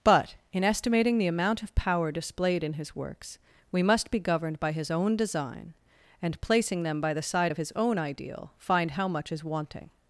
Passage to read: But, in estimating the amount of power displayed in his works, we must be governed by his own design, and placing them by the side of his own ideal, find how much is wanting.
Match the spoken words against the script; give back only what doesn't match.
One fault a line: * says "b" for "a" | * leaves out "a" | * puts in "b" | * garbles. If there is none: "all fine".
all fine